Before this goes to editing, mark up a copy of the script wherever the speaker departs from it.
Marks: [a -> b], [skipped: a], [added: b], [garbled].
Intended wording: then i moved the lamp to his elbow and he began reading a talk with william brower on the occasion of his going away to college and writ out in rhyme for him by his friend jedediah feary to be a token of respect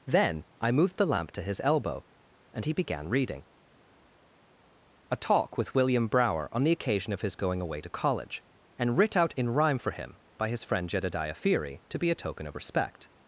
then i moved the lamp to his elbow and he began reading a talk with william brower on the occasion of his going away to college and writ out in rhyme for him by his friend jedediah feary to be a token of respect